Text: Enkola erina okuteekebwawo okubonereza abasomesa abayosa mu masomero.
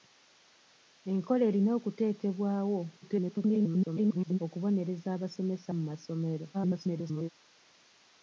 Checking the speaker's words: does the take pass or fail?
fail